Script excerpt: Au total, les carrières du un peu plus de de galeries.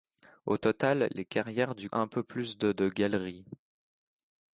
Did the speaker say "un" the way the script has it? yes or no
yes